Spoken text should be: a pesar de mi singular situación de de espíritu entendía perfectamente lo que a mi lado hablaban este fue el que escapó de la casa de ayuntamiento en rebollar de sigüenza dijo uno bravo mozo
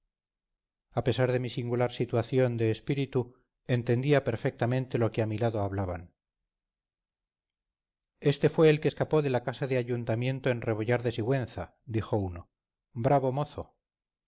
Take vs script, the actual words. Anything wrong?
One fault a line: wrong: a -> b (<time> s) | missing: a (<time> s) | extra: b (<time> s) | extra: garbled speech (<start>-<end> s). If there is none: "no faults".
missing: de (2.7 s)